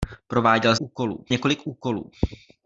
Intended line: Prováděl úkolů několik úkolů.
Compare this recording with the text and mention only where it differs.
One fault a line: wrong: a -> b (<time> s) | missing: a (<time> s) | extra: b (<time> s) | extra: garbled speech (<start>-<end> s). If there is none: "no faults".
no faults